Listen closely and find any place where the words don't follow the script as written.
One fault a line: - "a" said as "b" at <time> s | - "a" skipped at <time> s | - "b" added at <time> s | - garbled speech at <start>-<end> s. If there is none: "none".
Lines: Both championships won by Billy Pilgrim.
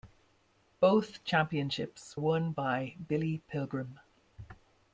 none